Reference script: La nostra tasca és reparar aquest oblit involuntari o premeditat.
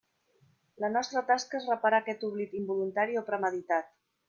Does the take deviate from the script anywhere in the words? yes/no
no